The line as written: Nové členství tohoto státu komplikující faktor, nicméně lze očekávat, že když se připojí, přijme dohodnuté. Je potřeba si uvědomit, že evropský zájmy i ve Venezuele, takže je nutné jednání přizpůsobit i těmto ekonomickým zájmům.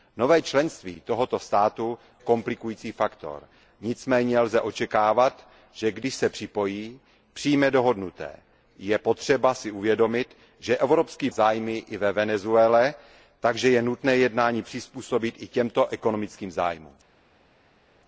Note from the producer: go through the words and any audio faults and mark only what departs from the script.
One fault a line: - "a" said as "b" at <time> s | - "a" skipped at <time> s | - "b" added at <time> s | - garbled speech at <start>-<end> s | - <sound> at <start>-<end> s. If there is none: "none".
none